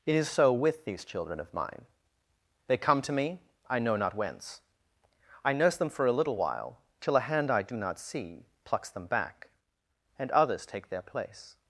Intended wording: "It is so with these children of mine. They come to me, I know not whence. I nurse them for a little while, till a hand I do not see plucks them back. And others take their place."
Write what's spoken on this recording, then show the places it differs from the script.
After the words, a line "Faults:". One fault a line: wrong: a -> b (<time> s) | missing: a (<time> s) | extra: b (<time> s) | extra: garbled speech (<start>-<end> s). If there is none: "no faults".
"It is so with these children of mine. They come to me, I know not whence. I nurse them for a little while, till a hand I do not see plucks them back. And others take their place."
Faults:
no faults